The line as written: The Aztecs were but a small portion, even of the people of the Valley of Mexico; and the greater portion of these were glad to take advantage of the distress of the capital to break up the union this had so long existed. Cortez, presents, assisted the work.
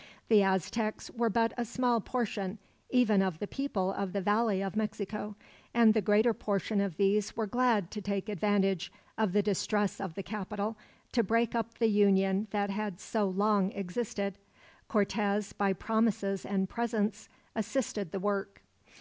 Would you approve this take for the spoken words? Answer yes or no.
no